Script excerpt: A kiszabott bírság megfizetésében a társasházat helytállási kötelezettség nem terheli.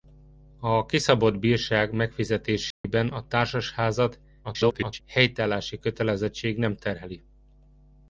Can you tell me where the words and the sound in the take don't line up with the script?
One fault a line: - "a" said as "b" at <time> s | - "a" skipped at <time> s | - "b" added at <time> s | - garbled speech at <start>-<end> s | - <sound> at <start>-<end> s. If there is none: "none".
- dropout at 2.7-2.8 s
- garbled speech at 4.4-5.0 s